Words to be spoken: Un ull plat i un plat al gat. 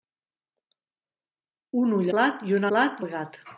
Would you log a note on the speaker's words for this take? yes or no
no